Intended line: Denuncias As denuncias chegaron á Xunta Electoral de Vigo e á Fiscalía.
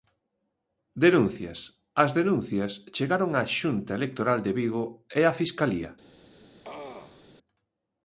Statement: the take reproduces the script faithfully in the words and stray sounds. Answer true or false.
false